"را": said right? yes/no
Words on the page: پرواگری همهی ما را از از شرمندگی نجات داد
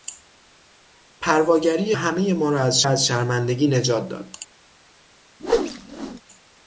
yes